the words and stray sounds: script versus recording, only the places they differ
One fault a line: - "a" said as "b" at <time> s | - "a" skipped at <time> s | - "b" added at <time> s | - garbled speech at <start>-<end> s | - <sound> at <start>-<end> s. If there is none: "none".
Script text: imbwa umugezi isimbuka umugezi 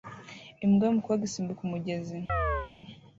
- "umugezi" said as "yumukobwa" at 0.9 s
- chirp at 2.3-2.7 s